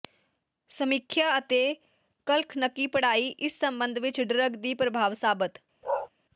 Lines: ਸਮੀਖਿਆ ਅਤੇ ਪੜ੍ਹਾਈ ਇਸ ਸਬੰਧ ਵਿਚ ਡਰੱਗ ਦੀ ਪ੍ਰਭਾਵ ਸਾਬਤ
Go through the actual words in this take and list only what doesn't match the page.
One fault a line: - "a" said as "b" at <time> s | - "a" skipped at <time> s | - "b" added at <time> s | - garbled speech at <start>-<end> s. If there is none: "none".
- "ਕਖਲਨਕੀ" added at 2.3 s